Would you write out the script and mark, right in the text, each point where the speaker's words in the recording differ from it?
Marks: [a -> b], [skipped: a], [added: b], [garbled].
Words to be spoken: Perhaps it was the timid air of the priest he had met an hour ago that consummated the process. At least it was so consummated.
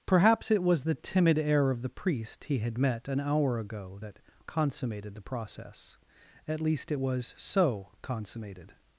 Perhaps it was the timid air of the priest he had met an hour ago that consummated the process. At least it was so consummated.